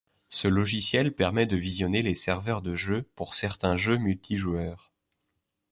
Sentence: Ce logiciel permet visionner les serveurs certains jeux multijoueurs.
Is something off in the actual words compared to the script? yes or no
yes